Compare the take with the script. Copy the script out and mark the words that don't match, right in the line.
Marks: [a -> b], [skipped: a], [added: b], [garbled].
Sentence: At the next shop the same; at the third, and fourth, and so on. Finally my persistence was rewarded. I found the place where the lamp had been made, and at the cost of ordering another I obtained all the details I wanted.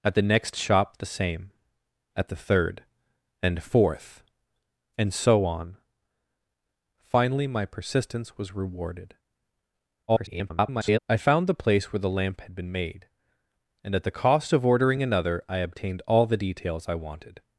At the next shop the same; at the third, and fourth, and so on. Finally my persistence was rewarded. [garbled] I found the place where the lamp had been made, and at the cost of ordering another I obtained all the details I wanted.